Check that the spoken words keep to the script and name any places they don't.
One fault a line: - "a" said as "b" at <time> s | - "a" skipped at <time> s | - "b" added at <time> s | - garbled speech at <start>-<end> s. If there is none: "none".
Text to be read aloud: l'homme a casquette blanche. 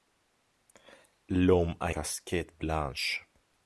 none